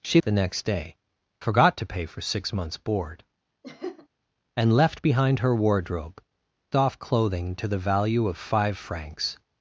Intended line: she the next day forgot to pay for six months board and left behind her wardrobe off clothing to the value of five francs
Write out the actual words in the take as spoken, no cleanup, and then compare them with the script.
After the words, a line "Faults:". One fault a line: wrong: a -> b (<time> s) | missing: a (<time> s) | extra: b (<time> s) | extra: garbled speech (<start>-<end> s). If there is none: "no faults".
she the next day forgot to pay for six months board and left behind her wardrobe off clothing to the value of five francs
Faults:
no faults